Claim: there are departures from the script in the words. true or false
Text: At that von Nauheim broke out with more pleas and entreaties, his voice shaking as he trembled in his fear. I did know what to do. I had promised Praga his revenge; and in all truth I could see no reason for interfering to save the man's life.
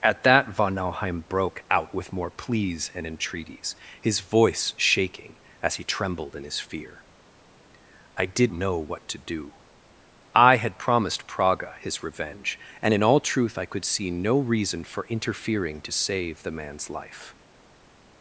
false